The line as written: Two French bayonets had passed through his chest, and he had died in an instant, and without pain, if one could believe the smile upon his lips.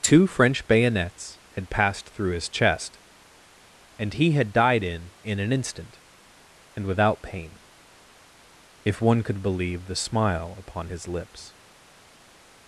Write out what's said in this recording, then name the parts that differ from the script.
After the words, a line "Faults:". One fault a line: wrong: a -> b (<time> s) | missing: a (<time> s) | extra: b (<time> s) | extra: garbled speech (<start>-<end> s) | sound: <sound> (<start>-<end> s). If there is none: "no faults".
Two French bayonets had passed through his chest, and he had died in in an instant, and without pain, if one could believe the smile upon his lips.
Faults:
extra: in (5.2 s)